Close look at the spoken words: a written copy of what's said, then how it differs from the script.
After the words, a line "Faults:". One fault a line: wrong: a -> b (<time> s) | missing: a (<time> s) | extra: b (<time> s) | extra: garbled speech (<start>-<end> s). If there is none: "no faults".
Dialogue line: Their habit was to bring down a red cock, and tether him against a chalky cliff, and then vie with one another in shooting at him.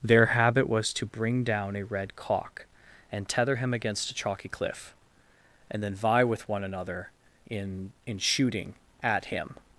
Their habit was to bring down a red cock, and tether him against a chalky cliff, and then vie with one another in in shooting at him.
Faults:
extra: in (8.1 s)